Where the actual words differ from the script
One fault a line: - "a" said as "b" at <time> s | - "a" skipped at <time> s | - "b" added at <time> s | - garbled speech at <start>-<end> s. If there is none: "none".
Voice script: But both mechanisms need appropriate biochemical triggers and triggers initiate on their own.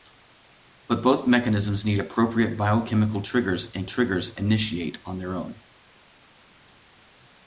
none